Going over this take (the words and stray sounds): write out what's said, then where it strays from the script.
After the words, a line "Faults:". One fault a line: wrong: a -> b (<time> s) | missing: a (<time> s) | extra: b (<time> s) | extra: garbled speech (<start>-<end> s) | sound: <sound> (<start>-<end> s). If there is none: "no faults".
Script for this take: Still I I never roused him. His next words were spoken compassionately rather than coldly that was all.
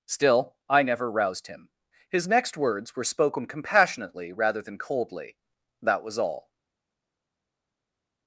Still I never roused him. His next words were spoken compassionately rather than coldly that was all.
Faults:
missing: I (0.8 s)